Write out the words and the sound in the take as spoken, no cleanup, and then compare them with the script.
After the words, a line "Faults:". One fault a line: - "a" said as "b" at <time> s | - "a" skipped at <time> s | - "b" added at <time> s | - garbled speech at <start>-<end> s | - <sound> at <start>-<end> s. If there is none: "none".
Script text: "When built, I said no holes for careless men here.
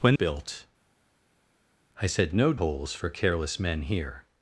"When built, I said no holes for careless men here.
Faults:
none